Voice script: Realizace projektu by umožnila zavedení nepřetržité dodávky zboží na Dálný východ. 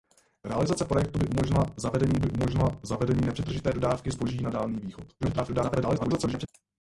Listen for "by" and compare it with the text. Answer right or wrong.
right